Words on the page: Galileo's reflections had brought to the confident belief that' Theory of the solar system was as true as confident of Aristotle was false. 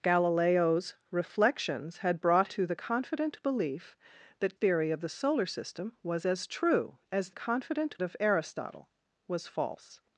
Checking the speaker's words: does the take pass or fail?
pass